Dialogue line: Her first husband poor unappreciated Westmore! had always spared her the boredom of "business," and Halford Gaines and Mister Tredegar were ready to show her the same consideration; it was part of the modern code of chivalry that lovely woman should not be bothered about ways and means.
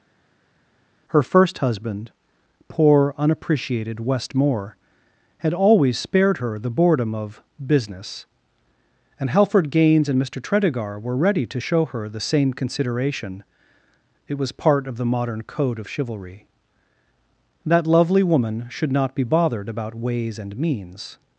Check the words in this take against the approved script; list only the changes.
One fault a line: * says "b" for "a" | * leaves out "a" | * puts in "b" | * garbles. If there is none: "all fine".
all fine